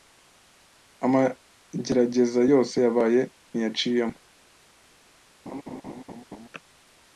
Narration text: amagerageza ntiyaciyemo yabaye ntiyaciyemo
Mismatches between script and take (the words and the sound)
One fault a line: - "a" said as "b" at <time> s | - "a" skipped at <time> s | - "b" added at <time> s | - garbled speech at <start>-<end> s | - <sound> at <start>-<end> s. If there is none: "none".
- "ntiyaciyemo" said as "yose" at 2.5 s
- laugh at 5.5-6.5 s